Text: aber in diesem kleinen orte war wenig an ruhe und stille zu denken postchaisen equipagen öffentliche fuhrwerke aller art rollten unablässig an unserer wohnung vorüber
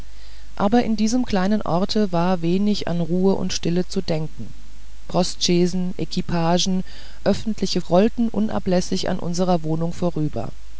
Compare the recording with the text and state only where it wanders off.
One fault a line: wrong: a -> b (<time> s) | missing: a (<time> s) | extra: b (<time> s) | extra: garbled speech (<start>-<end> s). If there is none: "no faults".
missing: fuhrwerke aller art (7.8 s)